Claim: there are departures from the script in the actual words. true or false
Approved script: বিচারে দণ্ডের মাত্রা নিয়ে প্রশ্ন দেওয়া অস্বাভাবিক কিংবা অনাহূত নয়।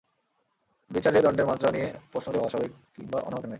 false